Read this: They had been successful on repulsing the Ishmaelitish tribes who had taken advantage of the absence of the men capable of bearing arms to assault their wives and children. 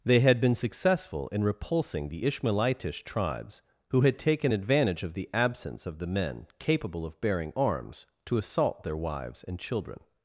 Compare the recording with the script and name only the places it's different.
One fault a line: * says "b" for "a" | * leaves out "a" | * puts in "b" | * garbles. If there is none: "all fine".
* says "in" for "on"